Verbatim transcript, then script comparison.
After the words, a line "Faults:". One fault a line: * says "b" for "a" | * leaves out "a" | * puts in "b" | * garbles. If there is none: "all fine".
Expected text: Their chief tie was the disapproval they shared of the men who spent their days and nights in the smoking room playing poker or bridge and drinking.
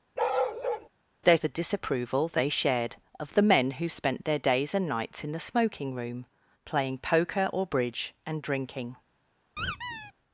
Their the disapproval they shared of the men who spent their days and nights in the smoking room playing poker or bridge and drinking.
Faults:
* leaves out "chief tie was"